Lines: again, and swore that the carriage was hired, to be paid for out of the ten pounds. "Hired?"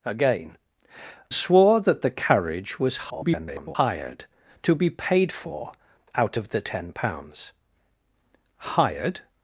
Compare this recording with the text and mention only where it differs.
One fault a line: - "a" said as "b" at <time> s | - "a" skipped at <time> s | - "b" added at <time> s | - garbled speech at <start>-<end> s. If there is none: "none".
- "and" skipped at 0.6 s
- garbled speech at 3.1-3.8 s